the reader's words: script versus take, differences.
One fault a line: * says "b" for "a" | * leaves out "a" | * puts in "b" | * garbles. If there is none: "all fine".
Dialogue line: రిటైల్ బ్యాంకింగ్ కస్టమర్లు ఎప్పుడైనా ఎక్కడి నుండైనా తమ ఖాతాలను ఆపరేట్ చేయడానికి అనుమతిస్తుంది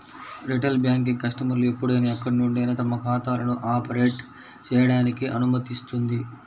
all fine